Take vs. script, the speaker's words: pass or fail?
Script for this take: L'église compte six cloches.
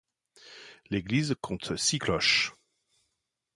pass